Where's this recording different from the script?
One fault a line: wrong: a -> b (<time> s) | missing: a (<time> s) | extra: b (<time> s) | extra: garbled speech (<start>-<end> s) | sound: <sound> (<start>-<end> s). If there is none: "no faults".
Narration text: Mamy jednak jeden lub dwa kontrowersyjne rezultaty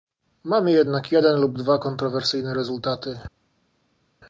no faults